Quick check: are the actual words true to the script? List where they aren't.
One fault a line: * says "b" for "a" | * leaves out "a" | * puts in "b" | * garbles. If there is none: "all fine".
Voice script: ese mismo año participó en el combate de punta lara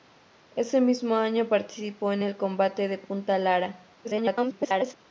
* garbles